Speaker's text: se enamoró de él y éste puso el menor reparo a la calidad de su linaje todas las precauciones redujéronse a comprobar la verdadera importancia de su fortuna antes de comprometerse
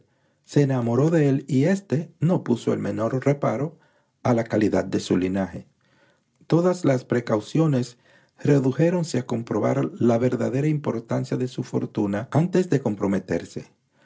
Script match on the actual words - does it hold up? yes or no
no